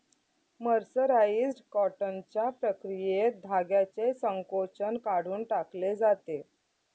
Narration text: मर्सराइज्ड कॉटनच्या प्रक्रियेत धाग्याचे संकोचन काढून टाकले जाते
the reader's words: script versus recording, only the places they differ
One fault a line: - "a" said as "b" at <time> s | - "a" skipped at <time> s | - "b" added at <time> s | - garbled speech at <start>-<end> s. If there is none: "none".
none